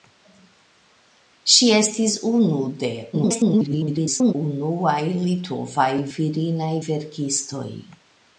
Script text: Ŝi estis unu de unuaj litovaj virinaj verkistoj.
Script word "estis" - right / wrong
right